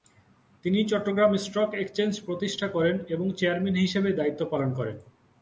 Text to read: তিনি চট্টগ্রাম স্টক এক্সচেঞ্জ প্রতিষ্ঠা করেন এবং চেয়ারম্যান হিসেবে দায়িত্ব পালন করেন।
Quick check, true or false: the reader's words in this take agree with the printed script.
true